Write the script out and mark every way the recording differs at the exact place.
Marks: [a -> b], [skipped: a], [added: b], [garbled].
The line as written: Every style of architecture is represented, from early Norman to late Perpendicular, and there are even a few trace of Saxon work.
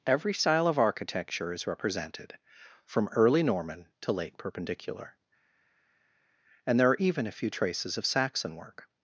Every style of architecture is represented, from early Norman to late Perpendicular, and there are even a few [trace -> traces] of Saxon work.